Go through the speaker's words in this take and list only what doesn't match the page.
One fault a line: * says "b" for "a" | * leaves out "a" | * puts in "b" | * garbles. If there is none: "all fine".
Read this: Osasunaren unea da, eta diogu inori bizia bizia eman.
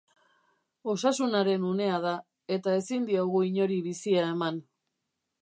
* puts in "ezin"
* leaves out "bizia"